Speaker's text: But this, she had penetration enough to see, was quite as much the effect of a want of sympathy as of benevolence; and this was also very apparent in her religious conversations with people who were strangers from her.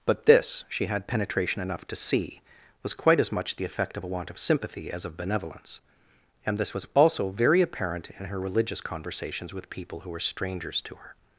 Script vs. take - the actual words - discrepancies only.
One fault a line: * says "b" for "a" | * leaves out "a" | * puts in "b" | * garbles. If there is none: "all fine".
* says "to" for "from"